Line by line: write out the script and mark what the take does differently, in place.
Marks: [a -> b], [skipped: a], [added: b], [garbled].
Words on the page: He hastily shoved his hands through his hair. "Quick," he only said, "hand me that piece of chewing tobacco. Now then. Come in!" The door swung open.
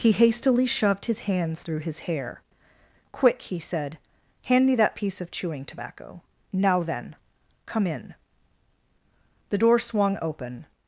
He hastily shoved his hands through his hair. "Quick," he [skipped: only] said, "hand me that piece of chewing tobacco. Now then. Come in!" The door swung open.